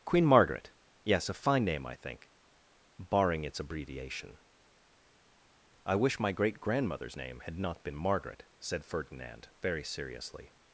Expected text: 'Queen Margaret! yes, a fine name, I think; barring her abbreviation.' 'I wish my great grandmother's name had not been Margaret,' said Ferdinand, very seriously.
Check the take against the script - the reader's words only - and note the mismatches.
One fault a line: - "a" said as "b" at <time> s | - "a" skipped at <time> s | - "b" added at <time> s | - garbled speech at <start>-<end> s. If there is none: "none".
- "her" said as "its" at 3.4 s